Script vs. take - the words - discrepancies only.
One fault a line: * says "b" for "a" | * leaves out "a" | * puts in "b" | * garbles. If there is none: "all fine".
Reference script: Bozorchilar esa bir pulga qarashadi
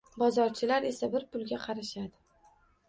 all fine